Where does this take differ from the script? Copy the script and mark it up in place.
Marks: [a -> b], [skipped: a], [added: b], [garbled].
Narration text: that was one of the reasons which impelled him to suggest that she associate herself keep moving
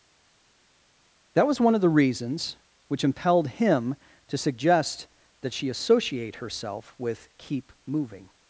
that was one of the reasons which impelled him to suggest that she associate herself [added: with] keep moving